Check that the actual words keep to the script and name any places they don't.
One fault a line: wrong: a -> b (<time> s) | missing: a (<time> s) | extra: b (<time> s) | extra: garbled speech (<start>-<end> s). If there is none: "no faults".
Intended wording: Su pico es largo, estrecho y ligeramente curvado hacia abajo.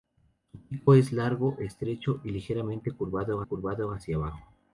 extra: curvado (3.4 s)